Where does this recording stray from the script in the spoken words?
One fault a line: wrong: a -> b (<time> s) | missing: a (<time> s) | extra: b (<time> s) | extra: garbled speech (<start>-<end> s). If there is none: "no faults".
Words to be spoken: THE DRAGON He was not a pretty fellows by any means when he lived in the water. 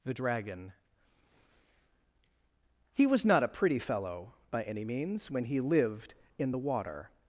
wrong: fellows -> fellow (3.8 s)